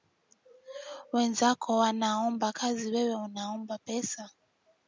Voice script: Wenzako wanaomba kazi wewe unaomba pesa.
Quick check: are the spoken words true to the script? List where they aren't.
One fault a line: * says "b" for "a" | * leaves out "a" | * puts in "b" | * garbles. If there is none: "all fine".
all fine